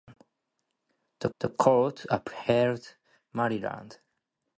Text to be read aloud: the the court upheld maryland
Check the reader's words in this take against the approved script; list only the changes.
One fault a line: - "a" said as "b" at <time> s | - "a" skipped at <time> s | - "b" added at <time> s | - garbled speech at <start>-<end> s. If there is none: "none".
none